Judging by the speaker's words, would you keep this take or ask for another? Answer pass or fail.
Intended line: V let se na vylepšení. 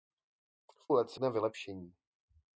pass